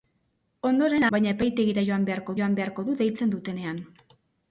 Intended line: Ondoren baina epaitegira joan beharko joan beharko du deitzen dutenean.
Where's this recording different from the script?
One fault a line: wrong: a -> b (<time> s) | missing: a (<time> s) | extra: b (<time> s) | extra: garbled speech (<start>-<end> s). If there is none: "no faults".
no faults